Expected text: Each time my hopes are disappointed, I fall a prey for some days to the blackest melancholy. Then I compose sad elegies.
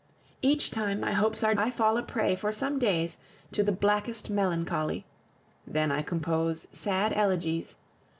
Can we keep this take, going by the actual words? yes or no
no